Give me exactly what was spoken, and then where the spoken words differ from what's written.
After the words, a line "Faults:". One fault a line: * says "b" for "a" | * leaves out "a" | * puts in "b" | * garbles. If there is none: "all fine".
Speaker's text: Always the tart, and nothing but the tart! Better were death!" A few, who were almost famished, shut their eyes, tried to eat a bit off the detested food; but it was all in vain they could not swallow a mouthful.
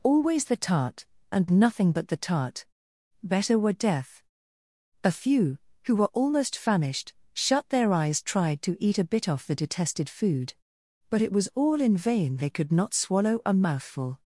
Always the tart, and nothing but the tart! Better were death!" A few, who were almost famished, shut their eyes, tried to eat a bit off the detested food; but it was all in vain they could not swallow a mouthful.
Faults:
all fine